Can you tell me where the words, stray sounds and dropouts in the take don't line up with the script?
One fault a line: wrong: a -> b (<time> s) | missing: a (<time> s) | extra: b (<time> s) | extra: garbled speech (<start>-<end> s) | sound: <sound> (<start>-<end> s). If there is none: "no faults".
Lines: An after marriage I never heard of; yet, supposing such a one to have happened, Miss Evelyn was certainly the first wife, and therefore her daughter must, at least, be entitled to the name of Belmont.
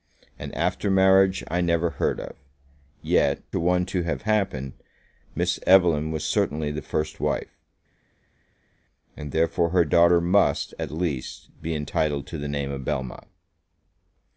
missing: supposing such (3.4 s)